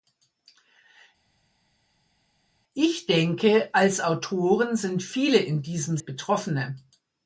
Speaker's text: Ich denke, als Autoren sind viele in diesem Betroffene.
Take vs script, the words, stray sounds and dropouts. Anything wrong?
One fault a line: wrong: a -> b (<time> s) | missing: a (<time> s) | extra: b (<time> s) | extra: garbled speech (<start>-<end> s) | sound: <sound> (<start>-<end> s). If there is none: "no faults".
no faults